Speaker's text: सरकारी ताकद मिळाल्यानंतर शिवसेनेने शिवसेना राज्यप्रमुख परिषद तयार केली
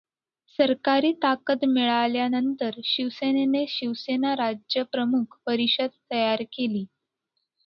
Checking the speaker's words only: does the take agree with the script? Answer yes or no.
yes